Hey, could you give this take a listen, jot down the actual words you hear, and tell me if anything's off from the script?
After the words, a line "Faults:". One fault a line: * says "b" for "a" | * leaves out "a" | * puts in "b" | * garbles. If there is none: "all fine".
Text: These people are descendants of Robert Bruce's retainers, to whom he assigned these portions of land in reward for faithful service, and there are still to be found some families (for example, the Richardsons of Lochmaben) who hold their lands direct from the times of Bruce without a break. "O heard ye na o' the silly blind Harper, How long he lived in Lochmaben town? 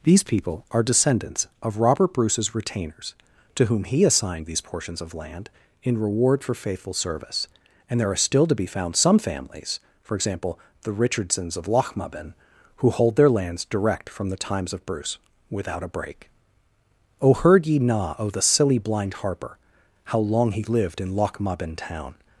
These people are descendants of Robert Bruce's retainers, to whom he assigned these portions of land in reward for faithful service, and there are still to be found some families (for example, the Richardsons of Lochmaben) who hold their lands direct from the times of Bruce without a break. "O heard ye na o' the silly blind Harper, How long he lived in Lochmaben town?
Faults:
all fine